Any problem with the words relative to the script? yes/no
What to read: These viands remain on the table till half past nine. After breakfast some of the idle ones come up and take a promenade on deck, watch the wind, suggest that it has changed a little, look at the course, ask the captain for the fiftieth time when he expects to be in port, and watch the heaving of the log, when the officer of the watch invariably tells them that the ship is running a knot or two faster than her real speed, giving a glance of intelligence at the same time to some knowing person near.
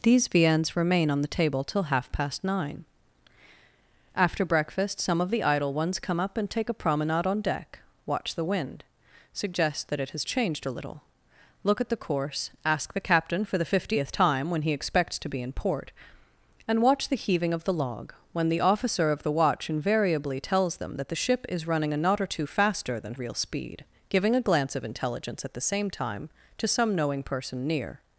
yes